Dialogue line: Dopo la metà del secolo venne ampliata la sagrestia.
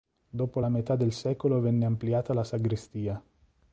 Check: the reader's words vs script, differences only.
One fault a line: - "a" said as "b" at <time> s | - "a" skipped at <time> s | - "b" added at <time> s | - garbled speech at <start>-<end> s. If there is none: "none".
none